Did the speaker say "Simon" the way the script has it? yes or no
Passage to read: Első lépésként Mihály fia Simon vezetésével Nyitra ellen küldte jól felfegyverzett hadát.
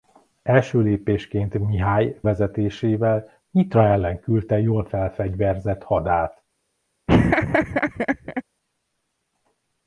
no